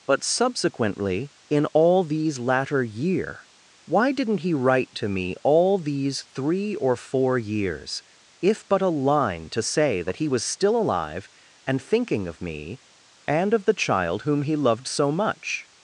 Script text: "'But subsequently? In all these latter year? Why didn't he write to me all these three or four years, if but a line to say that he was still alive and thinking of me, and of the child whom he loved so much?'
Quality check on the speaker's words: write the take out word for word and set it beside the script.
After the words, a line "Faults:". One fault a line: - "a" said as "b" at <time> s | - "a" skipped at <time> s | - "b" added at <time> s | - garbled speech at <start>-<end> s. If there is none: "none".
"'But subsequently? In all these latter year? Why didn't he write to me all these three or four years, if but a line to say that he was still alive and thinking of me, and of the child whom he loved so much?'
Faults:
none